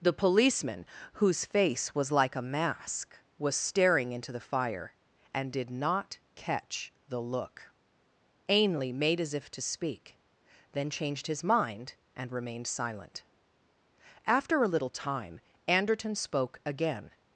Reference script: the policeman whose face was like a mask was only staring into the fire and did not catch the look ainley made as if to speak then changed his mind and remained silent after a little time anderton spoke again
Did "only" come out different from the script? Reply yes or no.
yes